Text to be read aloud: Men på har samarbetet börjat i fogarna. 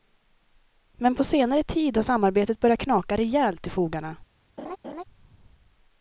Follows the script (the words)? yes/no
no